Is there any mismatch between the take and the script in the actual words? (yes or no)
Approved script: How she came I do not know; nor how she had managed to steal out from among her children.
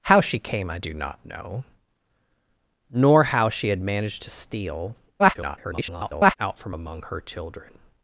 yes